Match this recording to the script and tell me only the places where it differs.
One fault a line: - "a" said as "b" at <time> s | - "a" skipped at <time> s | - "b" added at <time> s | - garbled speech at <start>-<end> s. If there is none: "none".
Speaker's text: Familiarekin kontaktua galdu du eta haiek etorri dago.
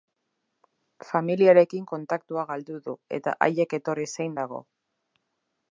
- "zain" added at 4.2 s